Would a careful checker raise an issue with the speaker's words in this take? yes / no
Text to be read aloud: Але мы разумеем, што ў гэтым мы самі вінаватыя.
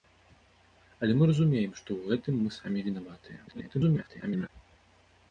yes